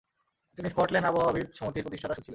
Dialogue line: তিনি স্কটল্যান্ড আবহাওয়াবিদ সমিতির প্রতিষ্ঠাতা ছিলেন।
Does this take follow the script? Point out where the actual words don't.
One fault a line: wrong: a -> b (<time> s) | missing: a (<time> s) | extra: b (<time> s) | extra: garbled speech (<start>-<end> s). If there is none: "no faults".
no faults